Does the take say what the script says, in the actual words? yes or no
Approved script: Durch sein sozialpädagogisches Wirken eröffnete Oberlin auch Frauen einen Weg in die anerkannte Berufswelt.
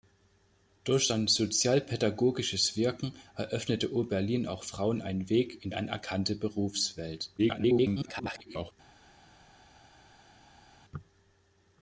no